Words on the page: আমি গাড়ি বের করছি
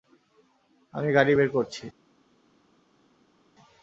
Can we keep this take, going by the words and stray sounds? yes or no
yes